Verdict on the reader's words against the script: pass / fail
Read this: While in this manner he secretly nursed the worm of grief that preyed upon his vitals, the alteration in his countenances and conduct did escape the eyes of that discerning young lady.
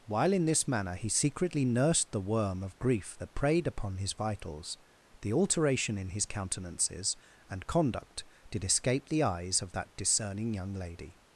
pass